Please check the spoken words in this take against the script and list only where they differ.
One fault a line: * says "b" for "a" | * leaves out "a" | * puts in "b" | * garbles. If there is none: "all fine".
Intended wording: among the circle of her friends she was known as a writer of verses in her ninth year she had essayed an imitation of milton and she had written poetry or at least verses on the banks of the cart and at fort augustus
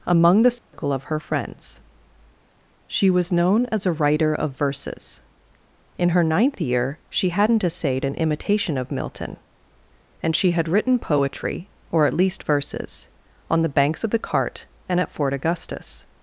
* says "hadn't" for "had"